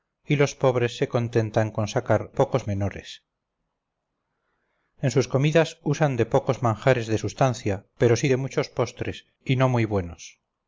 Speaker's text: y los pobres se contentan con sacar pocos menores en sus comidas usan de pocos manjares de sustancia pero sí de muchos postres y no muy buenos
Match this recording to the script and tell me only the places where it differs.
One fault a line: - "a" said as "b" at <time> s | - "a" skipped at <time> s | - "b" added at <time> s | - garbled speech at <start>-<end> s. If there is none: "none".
none